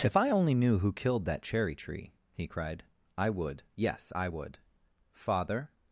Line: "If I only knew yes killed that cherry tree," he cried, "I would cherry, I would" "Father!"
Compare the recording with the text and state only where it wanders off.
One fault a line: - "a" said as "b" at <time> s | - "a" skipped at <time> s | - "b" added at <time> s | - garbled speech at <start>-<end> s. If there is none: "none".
- "yes" said as "who" at 0.8 s
- "cherry" said as "yes" at 3.8 s